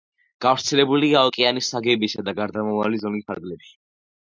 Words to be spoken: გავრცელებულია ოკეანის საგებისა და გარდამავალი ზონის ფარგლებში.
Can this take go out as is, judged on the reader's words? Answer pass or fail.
pass